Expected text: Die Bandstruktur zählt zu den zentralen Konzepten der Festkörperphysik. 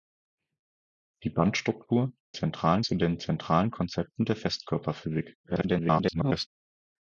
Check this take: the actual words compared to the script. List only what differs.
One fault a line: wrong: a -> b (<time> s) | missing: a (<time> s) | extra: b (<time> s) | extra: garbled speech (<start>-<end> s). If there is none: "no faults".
wrong: zählt -> zentralen (2.3 s)
extra: garbled speech (5.4-6.5 s)